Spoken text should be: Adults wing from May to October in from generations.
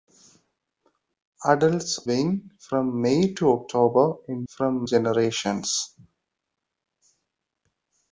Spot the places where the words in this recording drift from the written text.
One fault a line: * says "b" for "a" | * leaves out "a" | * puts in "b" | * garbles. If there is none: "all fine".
all fine